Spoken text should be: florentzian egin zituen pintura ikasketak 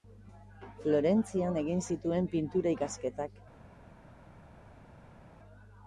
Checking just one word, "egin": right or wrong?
right